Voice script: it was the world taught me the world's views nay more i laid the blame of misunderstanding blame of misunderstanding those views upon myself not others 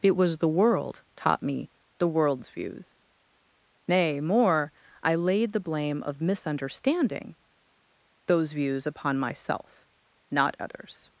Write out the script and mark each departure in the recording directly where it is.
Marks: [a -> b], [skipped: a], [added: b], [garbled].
it was the world taught me the world's views nay more i laid the blame of misunderstanding [skipped: blame of misunderstanding] those views upon myself not others